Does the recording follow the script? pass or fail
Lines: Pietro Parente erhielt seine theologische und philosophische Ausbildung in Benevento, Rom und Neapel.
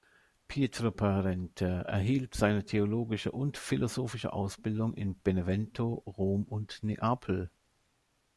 pass